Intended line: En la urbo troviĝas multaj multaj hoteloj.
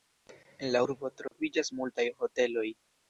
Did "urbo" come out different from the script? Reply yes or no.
no